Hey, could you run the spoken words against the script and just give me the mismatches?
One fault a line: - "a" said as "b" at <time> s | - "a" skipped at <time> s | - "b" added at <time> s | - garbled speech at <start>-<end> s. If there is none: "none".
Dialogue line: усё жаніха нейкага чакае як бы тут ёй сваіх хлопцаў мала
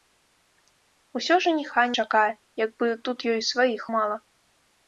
- "нейкага" skipped at 1.8 s
- "хлопцаў" skipped at 3.8 s